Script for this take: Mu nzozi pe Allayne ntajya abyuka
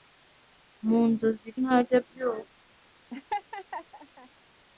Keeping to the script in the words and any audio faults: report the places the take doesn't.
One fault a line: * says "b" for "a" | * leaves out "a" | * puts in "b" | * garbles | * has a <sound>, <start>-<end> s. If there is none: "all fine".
* leaves out "pe Allayne"
* has a laugh, 3.1-4.3 s